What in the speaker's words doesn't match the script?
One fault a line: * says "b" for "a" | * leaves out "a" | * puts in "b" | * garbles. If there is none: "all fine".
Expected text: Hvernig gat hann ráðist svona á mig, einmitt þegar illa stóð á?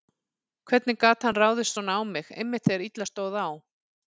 all fine